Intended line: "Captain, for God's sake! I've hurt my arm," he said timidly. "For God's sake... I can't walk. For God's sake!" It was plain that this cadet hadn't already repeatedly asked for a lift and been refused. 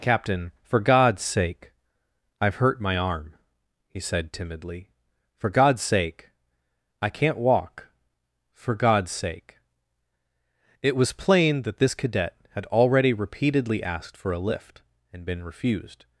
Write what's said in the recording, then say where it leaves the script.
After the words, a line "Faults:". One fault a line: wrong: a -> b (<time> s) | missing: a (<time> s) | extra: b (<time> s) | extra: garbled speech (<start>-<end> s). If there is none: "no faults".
"Captain, for God's sake! I've hurt my arm," he said timidly. "For God's sake... I can't walk. For God's sake!" It was plain that this cadet had already repeatedly asked for a lift and been refused.
Faults:
wrong: hadn't -> had (12.5 s)